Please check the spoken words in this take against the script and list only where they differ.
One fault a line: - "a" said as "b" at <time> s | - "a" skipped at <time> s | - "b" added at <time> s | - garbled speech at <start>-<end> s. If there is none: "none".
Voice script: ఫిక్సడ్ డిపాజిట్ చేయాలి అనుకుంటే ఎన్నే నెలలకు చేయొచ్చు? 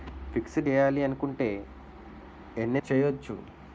- "డిపాజిట్" skipped at 0.7 s
- "నెలలకు" skipped at 2.8 s